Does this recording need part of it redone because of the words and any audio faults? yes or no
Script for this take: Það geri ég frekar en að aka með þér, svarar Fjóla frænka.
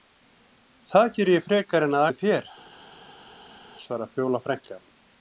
yes